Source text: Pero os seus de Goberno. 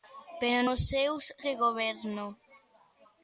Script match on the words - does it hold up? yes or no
yes